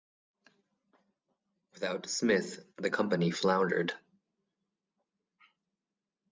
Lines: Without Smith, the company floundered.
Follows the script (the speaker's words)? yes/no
yes